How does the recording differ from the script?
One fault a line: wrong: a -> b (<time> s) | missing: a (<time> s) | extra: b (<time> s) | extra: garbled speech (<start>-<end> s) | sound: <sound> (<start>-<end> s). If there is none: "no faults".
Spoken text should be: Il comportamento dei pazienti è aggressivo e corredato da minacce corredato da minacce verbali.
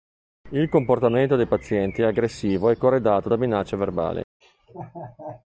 missing: corredato da minacce (3.8 s)
sound: laugh (4.4-5.4 s)